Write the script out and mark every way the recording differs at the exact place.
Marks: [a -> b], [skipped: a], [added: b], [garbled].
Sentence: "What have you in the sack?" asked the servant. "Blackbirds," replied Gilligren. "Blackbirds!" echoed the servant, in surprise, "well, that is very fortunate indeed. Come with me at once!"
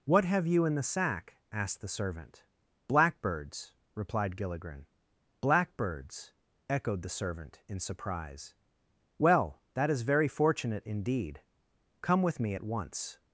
"What have you in the sack?" asked the servant. "Blackbirds," replied Gilligren. "Blackbirds!" echoed the servant, in surprise, "well, that is very fortunate indeed. Come with me at once!"